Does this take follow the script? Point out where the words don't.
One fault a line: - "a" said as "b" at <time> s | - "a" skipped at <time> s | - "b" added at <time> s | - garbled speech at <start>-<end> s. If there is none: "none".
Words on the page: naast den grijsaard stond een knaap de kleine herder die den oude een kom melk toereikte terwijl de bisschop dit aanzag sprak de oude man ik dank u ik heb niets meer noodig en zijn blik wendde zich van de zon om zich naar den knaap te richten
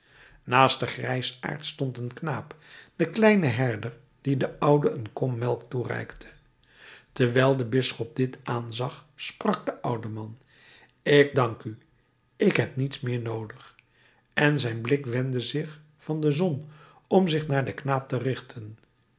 none